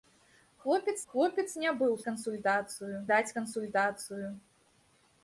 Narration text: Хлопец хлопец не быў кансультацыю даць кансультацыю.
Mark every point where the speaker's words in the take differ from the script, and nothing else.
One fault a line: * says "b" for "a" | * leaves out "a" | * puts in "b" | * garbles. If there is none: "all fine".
all fine